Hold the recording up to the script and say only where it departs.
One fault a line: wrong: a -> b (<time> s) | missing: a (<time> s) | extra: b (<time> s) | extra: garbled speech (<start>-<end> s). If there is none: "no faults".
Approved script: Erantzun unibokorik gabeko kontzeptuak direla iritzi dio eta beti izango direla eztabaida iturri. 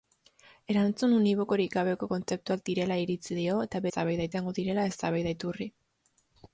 wrong: beti -> eztabaida (3.9 s)